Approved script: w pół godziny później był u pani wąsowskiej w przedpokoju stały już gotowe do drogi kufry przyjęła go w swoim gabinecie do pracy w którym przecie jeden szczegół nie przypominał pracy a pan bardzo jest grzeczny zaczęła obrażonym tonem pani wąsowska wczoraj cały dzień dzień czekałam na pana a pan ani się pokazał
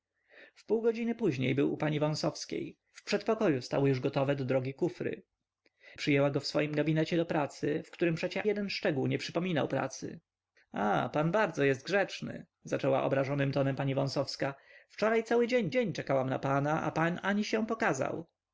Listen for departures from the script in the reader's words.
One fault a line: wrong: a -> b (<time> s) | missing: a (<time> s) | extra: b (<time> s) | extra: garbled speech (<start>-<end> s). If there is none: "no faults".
no faults